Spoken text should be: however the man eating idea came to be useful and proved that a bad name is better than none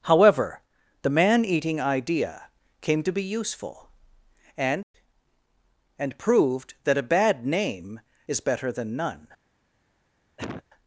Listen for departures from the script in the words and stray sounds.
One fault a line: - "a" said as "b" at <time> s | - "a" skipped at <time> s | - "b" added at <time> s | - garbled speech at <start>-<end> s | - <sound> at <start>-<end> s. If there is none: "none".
- "and" added at 6.0 s
- cough at 10.4-10.6 s